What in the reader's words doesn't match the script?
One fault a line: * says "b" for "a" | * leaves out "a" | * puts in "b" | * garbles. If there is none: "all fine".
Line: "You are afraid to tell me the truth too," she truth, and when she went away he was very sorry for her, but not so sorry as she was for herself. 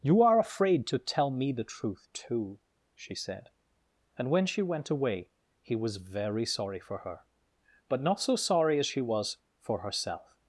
* says "said" for "truth"